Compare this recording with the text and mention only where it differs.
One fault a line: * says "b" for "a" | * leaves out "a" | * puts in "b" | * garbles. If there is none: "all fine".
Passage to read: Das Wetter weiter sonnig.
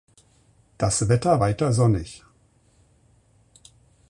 all fine